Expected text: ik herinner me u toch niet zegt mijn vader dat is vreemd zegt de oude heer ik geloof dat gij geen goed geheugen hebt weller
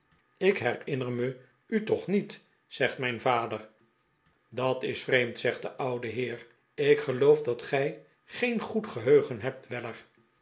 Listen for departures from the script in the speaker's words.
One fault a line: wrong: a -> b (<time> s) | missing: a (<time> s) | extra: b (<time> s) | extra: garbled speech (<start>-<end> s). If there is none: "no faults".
no faults